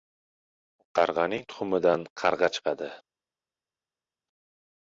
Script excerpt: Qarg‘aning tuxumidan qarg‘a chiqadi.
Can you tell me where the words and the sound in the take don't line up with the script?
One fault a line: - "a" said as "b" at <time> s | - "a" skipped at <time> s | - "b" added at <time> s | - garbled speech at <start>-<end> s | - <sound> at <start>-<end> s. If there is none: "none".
none